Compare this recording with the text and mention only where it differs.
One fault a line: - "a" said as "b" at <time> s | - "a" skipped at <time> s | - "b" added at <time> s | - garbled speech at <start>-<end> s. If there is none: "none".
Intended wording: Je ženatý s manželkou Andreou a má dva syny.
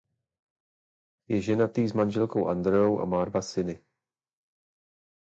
none